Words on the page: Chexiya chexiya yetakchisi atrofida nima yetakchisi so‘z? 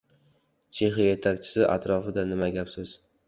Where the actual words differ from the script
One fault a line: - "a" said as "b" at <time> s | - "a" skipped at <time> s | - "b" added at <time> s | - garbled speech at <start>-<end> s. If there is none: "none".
- "chexiya" skipped at 1.1 s
- "yetakchisi" said as "gap" at 2.6 s